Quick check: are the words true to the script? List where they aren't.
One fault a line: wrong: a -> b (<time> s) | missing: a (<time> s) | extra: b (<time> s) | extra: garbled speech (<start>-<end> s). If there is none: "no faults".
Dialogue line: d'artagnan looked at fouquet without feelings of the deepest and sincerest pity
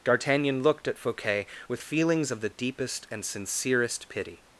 wrong: without -> with (1.7 s)